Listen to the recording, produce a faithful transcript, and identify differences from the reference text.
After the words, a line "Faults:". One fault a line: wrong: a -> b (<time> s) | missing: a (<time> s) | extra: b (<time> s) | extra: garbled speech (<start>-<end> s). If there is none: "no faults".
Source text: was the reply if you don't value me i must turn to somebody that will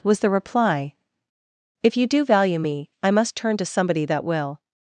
was the reply if you do value me i must turn to somebody that will
Faults:
wrong: don't -> do (2.1 s)